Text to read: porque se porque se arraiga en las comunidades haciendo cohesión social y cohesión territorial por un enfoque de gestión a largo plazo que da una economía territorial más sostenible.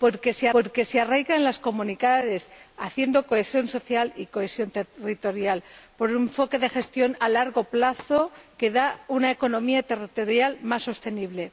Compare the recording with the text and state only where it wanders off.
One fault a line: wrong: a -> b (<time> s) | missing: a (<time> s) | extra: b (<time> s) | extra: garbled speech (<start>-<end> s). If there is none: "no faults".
no faults